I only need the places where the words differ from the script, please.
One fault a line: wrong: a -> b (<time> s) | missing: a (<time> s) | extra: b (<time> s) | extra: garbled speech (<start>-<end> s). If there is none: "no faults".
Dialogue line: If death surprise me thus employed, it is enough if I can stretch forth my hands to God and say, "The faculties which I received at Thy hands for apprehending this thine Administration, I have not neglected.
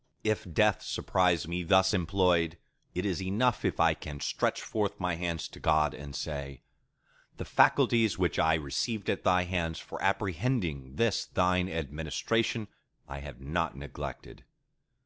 no faults